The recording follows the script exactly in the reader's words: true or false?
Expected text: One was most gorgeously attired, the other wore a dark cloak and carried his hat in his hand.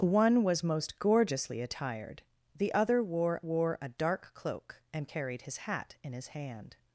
false